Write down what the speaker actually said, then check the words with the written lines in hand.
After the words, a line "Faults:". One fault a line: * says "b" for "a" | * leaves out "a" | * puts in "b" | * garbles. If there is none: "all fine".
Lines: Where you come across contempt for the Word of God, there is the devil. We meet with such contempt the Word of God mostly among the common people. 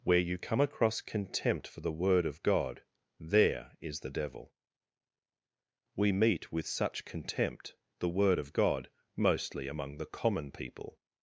Where you come across contempt for the Word of God, there is the devil. We meet with such contempt the Word of God mostly among the common people.
Faults:
all fine